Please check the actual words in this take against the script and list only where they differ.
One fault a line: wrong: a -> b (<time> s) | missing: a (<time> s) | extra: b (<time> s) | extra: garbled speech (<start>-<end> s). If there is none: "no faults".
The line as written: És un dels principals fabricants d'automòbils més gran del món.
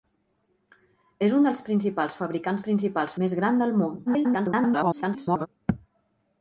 wrong: d'automòbils -> principals (2.7 s)
extra: garbled speech (4.1-5.5 s)